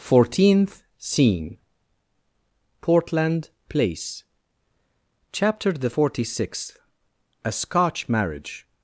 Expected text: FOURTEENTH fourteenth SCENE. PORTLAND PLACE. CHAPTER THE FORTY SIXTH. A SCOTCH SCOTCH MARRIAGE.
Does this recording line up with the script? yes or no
no